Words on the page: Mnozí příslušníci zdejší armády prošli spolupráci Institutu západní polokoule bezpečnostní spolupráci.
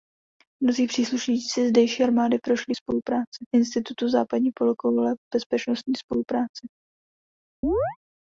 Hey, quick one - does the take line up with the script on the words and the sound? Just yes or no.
no